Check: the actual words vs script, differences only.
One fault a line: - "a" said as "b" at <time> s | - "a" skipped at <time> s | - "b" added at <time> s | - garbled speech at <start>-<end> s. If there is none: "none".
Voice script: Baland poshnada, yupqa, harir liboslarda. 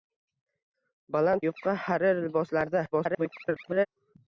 - "poshnada" skipped at 1.4 s
- garbled speech at 2.9-3.9 s